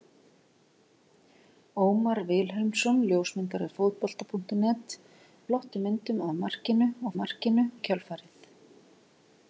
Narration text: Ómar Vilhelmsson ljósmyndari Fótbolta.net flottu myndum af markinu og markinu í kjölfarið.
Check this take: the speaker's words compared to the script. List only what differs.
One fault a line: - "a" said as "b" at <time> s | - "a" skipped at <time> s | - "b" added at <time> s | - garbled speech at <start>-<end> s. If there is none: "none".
none